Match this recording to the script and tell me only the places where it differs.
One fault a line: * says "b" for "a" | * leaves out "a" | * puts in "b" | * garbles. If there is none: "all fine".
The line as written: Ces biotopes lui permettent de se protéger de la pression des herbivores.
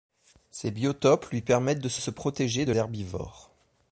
* puts in "se"
* leaves out "la pression des"